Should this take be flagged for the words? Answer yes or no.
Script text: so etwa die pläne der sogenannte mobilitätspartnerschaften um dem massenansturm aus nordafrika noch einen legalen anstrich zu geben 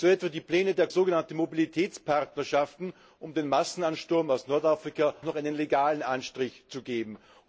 no